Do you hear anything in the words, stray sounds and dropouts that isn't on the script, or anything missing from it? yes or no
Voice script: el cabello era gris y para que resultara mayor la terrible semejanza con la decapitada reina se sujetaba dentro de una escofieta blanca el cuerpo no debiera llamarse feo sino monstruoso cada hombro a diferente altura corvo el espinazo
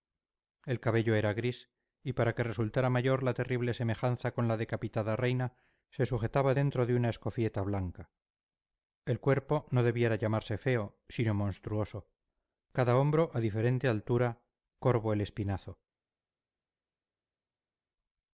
no